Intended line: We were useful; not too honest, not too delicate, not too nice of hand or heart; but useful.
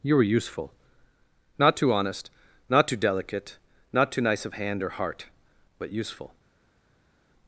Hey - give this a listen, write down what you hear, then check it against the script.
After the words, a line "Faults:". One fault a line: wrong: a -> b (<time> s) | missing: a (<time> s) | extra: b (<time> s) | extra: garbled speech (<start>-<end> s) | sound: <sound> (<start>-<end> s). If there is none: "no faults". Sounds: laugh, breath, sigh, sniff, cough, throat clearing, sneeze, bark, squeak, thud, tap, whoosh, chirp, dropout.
You were useful; not too honest, not too delicate, not too nice of hand or heart; but useful.
Faults:
wrong: We -> You (0.0 s)